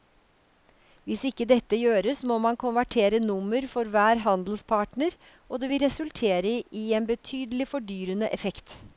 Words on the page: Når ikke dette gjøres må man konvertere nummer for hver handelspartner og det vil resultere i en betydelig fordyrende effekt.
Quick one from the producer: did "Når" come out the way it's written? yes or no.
no